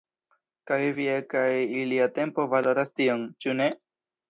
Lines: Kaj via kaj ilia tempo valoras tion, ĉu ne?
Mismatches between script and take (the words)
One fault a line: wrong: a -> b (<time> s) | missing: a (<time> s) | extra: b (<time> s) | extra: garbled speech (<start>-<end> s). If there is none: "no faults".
no faults